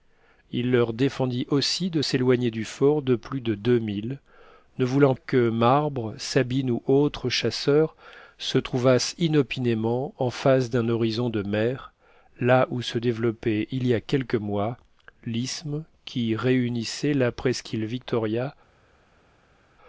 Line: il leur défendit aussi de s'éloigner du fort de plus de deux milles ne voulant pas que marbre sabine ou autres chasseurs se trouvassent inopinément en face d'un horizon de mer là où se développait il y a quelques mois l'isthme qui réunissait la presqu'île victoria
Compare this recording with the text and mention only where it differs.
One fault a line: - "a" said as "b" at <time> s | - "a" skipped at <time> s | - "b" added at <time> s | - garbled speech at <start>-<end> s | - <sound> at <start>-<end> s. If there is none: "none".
- "pas" skipped at 5.1 s